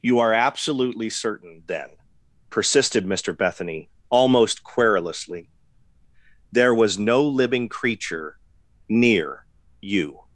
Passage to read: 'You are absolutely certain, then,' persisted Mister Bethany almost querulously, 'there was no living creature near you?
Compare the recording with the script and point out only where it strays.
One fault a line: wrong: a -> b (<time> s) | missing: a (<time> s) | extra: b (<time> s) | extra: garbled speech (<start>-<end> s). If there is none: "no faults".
no faults